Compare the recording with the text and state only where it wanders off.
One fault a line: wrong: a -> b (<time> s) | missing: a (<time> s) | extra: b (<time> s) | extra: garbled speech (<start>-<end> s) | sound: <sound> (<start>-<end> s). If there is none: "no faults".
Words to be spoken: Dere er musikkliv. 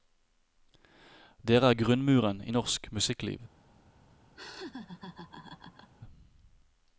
extra: grunnmuren i norsk (1.8 s)
sound: laugh (4.3-5.9 s)